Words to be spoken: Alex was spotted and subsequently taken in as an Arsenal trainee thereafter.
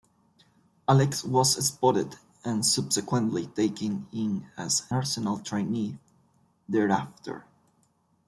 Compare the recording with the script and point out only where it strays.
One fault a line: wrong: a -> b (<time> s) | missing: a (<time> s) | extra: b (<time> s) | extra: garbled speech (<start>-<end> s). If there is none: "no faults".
missing: an (4.9 s)